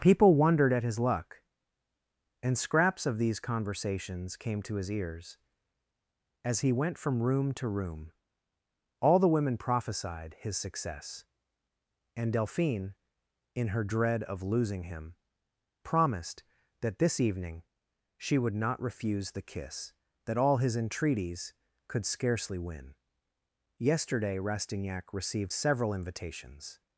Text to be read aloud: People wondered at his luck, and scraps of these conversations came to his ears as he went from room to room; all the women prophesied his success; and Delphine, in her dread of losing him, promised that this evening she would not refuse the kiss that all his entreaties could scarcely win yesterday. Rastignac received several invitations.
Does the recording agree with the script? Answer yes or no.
yes